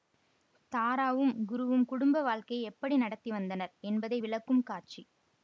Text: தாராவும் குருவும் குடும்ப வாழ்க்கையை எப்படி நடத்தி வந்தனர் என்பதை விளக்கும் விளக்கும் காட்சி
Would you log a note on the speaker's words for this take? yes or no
yes